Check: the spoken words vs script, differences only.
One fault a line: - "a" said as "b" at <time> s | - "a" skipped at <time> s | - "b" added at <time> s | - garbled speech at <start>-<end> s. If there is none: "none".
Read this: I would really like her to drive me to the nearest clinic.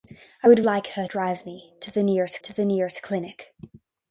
- "really" skipped at 0.6 s
- "drive me" added at 1.0 s
- "drive me" said as "the nearest" at 1.9 s